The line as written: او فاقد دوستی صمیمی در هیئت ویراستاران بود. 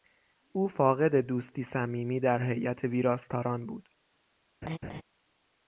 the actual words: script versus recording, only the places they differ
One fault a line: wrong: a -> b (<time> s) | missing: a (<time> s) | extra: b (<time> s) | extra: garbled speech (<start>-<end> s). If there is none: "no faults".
no faults